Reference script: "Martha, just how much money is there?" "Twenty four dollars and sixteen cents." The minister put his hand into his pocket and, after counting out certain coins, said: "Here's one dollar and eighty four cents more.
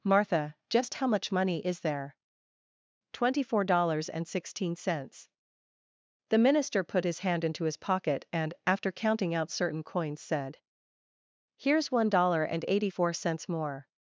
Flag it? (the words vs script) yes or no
no